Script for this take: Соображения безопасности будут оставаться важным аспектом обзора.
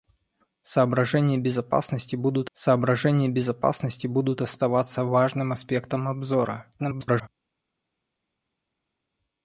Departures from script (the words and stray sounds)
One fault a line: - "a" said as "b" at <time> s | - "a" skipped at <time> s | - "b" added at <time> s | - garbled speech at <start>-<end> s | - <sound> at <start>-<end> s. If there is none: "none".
- "соображения безопасности будут" added at 2.5 s
- garbled speech at 6.8-7.3 s